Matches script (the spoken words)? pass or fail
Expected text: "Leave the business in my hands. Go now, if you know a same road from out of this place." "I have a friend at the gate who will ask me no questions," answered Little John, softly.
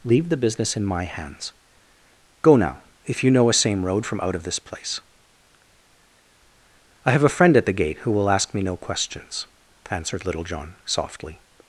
pass